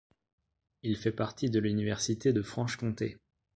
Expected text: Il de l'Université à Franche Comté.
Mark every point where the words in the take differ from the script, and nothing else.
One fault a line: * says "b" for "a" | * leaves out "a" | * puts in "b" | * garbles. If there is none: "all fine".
* puts in "fait partie"
* says "de" for "à"